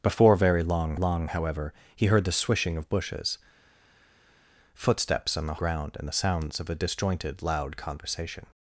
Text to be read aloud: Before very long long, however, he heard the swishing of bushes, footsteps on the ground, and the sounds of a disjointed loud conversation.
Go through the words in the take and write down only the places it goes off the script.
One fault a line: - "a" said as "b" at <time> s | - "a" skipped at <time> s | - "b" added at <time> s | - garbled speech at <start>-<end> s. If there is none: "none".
none